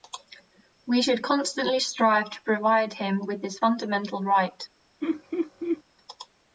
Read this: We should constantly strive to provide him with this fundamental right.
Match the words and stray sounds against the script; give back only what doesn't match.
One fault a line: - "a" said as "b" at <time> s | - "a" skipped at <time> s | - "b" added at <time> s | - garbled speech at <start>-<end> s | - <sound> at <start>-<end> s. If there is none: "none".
- laugh at 5.0-5.8 s